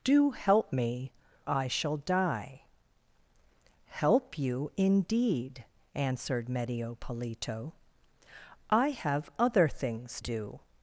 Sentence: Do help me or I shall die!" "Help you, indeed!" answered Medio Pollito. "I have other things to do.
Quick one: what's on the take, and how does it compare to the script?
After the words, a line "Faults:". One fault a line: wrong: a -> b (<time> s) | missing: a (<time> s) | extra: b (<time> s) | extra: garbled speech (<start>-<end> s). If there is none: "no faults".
Do help me I shall die!" "Help you, indeed!" answered Medio Pollito. "I have other things do.
Faults:
missing: or (1.1 s)
missing: to (10.2 s)